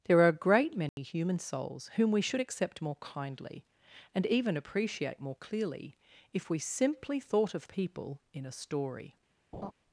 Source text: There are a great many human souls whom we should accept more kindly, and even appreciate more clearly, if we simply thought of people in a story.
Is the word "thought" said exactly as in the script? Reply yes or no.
yes